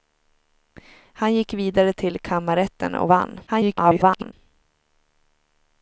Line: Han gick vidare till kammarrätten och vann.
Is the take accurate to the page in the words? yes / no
no